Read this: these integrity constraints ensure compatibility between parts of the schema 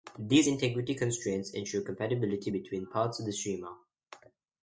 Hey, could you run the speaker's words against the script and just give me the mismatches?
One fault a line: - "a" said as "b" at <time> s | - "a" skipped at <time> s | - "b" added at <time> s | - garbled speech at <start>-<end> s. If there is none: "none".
none